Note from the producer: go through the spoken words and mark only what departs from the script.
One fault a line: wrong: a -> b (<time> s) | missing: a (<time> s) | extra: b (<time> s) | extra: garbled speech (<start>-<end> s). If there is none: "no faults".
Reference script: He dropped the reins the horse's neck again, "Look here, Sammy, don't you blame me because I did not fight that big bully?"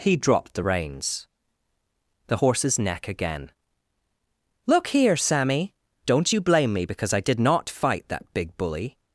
no faults